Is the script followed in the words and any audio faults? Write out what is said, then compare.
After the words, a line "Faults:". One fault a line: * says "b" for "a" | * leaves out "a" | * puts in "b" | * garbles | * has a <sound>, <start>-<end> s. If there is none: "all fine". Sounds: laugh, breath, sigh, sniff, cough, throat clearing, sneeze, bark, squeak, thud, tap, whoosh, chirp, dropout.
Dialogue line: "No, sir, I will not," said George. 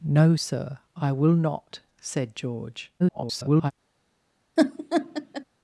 "No, sir, I will not," said George. [garbled]
Faults:
* garbles
* has a laugh, 4.6-5.4 s